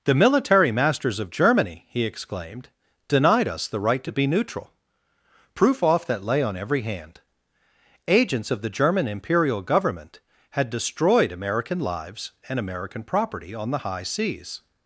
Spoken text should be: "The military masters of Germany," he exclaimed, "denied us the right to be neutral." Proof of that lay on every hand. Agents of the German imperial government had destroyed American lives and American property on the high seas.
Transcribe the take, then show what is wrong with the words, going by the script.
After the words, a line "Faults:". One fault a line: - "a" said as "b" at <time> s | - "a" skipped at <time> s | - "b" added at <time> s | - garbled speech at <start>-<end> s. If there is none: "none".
"The military masters of Germany," he exclaimed, "denied us the right to be neutral." Proof off that lay on every hand. Agents of the German imperial government had destroyed American lives and American property on the high seas.
Faults:
- "of" said as "off" at 5.8 s